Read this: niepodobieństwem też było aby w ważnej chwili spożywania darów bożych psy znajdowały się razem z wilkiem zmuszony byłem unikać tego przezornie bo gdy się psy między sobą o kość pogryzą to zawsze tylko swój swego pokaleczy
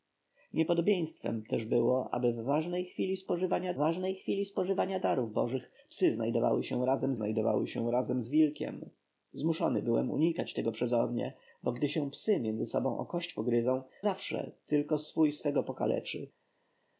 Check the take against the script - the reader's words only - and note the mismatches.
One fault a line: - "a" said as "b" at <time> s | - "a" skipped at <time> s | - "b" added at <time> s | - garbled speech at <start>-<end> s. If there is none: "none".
- "ważnej chwili spożywania" added at 3.7 s
- "znajdowały się razem" added at 7.1 s
- "to" skipped at 13.8 s